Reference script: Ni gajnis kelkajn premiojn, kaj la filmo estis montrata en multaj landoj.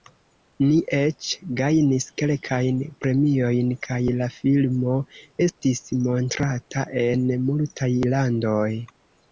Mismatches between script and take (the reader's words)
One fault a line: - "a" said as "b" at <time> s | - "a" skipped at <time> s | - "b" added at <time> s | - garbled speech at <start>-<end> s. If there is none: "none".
- "eĉ" added at 1.0 s